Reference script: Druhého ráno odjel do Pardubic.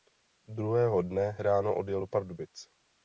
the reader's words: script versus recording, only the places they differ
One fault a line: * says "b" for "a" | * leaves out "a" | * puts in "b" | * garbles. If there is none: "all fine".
* puts in "dne"